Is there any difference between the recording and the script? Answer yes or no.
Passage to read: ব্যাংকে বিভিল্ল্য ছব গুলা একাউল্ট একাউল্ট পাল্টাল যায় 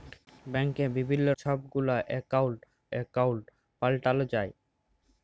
no